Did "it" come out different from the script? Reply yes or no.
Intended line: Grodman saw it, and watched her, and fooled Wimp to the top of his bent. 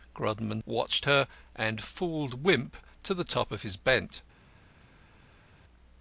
yes